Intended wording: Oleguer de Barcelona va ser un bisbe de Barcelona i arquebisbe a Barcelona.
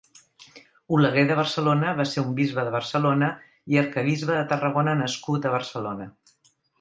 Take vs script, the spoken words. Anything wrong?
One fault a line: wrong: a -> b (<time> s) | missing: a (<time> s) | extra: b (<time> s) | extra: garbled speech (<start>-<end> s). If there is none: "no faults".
extra: de Tarragona nascut (4.4 s)